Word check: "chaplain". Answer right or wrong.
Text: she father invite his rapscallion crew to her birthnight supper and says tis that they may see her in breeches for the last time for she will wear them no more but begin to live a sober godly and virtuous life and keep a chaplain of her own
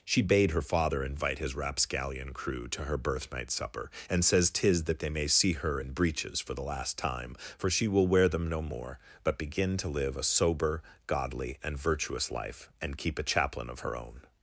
right